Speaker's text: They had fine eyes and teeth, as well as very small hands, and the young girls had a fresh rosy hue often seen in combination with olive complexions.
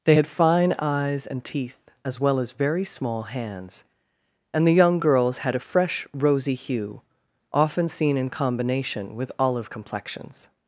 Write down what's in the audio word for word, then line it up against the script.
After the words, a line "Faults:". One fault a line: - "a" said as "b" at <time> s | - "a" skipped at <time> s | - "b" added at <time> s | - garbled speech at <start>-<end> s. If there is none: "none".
They had fine eyes and teeth, as well as very small hands, and the young girls had a fresh rosy hue often seen in combination with olive complexions.
Faults:
none